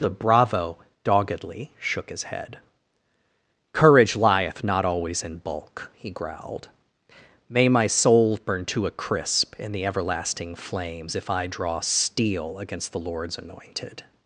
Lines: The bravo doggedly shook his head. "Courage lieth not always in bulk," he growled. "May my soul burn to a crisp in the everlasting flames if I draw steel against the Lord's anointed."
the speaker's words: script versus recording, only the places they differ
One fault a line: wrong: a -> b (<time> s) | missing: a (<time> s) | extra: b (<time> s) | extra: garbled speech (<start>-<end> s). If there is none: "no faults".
no faults